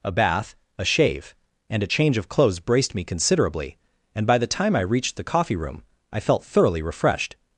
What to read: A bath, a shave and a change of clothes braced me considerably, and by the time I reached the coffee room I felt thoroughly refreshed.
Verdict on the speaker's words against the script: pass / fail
pass